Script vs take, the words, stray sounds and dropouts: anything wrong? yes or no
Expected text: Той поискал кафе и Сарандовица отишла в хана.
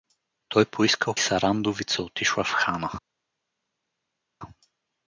yes